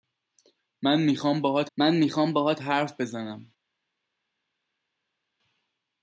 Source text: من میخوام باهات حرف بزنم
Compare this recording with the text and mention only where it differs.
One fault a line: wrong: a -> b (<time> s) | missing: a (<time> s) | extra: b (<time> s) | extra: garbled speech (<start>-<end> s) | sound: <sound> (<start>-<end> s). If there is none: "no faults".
extra: من میخوام باهات (1.8 s)